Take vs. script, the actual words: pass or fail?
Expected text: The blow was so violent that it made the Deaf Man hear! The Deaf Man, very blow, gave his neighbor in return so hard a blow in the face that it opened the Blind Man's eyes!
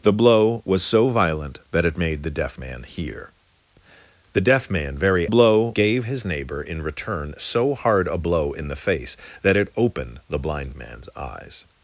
pass